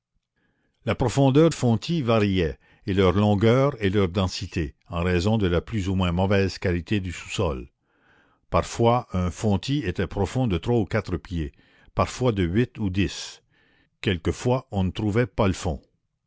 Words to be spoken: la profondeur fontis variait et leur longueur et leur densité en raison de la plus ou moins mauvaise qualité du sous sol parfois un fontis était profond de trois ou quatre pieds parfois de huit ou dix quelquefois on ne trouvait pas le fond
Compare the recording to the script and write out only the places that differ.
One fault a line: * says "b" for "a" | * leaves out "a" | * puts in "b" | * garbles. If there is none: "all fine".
all fine